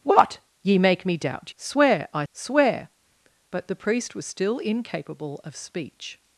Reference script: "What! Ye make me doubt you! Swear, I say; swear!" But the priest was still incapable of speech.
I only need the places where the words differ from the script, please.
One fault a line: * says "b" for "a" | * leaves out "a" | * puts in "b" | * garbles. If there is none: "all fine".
* leaves out "you"
* leaves out "say"